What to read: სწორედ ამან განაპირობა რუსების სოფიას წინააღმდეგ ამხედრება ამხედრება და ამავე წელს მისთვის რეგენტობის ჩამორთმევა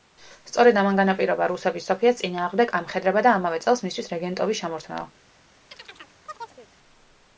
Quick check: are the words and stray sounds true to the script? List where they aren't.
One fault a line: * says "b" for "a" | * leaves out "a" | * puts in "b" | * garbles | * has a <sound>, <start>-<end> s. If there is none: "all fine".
* leaves out "ამხედრება"
* has a chirp, 5.7-6.7 s